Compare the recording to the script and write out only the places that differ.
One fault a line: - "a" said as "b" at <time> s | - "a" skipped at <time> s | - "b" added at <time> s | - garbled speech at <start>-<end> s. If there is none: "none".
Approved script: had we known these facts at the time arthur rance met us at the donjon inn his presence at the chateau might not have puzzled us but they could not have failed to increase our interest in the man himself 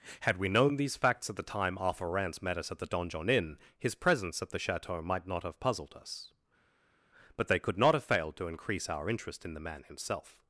none